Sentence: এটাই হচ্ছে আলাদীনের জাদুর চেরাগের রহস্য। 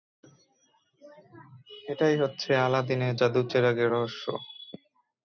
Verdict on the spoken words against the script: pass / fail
pass